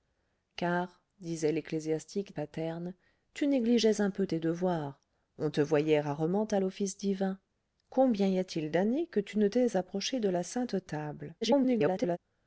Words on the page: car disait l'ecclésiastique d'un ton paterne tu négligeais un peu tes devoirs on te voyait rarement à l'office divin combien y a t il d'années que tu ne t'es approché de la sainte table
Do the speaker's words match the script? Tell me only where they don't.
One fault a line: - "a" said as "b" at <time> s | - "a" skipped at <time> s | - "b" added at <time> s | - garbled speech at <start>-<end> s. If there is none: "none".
- "d'un ton" skipped at 2.4 s
- garbled speech at 11.4-12.2 s